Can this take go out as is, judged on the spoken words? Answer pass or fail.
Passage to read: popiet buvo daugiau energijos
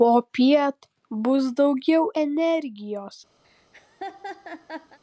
fail